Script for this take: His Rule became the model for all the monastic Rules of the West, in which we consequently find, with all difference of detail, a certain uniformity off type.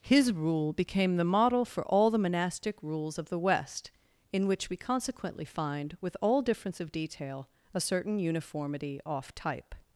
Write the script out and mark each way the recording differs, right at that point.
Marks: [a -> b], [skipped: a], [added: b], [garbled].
His Rule became the model for all the monastic Rules of the West, in which we consequently find, with all difference of detail, a certain uniformity off type.